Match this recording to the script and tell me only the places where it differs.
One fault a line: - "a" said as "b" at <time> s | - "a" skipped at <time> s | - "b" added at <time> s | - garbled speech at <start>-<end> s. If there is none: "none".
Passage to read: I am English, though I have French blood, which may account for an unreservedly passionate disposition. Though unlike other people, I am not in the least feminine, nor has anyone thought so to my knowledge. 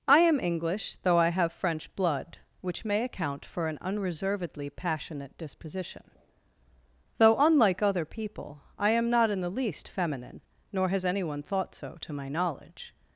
none